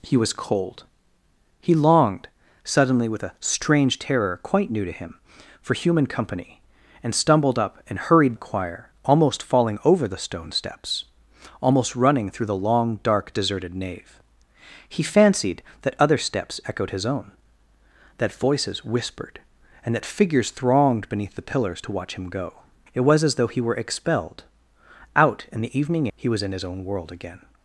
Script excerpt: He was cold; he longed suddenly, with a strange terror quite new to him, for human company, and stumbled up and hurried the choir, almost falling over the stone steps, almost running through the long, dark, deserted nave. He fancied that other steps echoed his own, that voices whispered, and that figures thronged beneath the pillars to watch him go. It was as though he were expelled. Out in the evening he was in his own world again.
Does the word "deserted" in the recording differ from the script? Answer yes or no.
no